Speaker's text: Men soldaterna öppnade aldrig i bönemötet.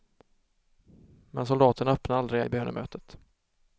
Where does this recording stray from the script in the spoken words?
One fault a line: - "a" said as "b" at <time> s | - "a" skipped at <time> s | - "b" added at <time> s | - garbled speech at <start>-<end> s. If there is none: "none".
none